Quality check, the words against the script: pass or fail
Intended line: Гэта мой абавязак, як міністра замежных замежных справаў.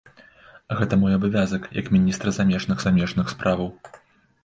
pass